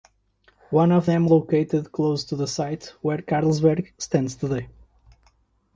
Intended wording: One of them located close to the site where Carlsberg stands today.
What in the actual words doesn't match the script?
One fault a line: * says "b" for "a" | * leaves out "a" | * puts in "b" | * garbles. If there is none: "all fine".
all fine